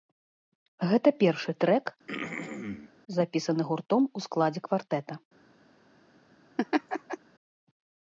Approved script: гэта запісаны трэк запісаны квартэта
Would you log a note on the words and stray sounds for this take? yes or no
yes